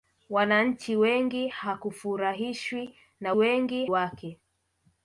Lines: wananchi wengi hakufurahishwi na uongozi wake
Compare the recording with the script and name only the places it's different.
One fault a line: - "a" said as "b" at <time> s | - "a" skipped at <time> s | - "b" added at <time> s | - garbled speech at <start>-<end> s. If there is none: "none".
- "uongozi" said as "wengi" at 3.3 s